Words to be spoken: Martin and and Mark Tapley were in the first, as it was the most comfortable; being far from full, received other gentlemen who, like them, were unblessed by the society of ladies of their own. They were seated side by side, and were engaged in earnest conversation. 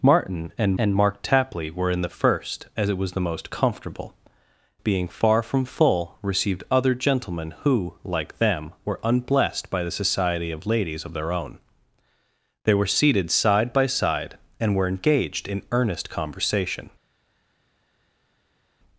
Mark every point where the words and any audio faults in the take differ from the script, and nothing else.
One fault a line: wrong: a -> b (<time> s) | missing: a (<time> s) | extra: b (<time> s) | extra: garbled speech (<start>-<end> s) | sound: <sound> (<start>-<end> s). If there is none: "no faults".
no faults